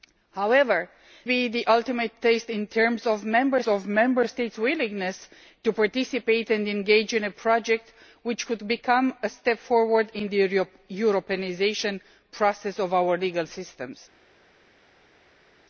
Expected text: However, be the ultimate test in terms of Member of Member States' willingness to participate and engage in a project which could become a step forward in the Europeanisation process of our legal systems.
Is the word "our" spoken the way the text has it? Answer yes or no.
yes